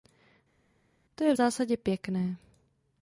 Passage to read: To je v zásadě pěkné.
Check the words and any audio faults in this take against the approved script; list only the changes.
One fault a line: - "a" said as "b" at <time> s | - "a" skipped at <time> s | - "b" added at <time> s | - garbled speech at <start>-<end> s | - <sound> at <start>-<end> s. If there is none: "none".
none